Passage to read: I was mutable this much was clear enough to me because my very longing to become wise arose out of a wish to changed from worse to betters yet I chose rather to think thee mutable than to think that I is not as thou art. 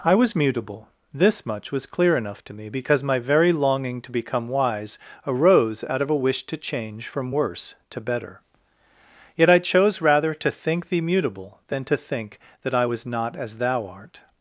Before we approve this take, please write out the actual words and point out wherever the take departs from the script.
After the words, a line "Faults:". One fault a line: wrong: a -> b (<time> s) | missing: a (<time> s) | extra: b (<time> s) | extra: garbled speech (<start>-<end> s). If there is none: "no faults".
I was mutable this much was clear enough to me because my very longing to become wise arose out of a wish to change from worse to better yet I chose rather to think thee mutable than to think that I was not as thou art.
Faults:
wrong: changed -> change (6.6 s)
wrong: betters -> better (8.0 s)
wrong: is -> was (12.8 s)